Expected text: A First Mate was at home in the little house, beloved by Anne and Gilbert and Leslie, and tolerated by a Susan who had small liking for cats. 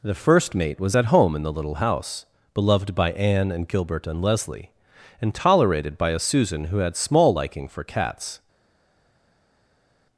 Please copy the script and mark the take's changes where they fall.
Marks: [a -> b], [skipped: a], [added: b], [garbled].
[A -> The] First Mate was at home in the little house, beloved by Anne and Gilbert and Leslie, and tolerated by a Susan who had small liking for cats.